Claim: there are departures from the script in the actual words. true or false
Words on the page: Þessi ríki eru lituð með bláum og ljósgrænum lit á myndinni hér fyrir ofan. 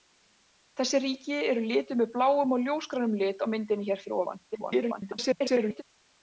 true